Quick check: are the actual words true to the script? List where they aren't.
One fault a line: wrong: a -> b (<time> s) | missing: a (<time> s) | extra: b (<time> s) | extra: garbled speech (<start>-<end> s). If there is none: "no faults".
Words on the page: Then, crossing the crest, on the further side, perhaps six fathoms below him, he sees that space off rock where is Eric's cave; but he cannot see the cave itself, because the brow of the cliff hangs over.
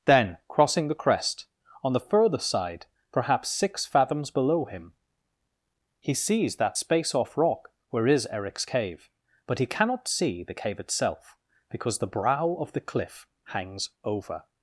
no faults